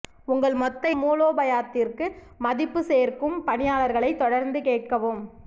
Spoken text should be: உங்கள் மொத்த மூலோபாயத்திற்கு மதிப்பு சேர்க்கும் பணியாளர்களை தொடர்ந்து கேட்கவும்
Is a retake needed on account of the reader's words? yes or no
no